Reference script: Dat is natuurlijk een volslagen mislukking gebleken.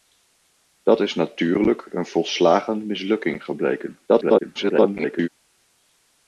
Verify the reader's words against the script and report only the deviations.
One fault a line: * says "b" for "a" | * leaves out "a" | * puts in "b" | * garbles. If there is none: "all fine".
* garbles